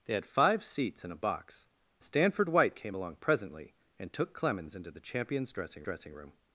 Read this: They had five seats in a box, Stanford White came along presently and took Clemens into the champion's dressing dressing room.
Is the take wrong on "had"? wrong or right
right